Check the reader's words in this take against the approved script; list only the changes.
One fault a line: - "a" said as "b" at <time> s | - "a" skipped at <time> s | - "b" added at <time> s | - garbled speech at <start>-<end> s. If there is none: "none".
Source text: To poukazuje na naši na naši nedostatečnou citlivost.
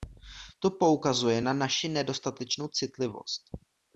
- "na naši" skipped at 1.9 s